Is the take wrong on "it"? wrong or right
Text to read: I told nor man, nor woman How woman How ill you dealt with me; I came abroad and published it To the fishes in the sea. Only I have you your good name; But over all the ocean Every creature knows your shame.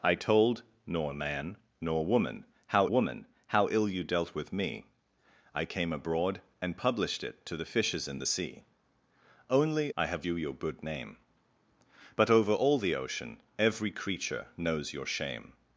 right